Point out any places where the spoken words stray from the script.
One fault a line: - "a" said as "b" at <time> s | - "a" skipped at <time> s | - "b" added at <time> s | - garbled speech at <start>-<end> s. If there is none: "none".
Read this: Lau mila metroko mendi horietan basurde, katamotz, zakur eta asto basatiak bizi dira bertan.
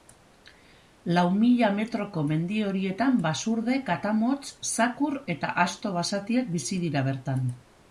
none